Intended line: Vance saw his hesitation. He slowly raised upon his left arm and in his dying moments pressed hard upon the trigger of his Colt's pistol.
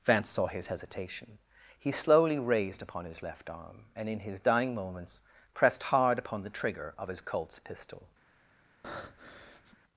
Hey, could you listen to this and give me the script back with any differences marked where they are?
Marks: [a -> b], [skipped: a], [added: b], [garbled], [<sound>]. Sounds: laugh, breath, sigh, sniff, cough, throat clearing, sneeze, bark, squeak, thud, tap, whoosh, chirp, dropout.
Vance saw his hesitation. He slowly raised upon his left arm and in his dying moments pressed hard upon the trigger of his Colt's pistol. [breath]